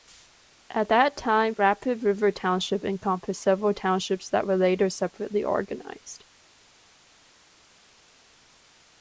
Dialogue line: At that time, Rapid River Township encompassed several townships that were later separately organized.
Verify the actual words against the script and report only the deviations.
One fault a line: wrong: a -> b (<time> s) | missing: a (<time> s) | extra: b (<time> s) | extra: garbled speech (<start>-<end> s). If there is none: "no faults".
no faults